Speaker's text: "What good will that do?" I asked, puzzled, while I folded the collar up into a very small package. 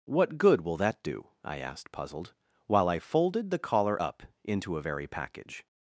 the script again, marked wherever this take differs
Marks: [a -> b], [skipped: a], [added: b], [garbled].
"What good will that do?" I asked, puzzled, while I folded the collar up into a very [skipped: small] package.